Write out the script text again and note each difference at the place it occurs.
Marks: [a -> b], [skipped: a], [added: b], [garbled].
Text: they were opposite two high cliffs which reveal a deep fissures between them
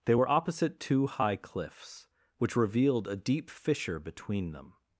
they were opposite two high cliffs which [reveal -> revealed] a deep [fissures -> fissure] between them